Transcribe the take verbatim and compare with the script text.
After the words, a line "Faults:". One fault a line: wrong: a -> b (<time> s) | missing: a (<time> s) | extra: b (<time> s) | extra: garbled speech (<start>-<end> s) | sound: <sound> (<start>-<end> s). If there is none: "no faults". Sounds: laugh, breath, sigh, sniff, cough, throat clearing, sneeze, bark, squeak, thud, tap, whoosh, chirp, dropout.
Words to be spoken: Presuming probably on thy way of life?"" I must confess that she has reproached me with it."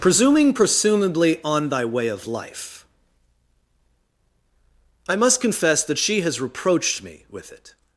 Presuming presumably on thy way of life?"" I must confess that she has reproached me with it."
Faults:
wrong: probably -> presumably (0.5 s)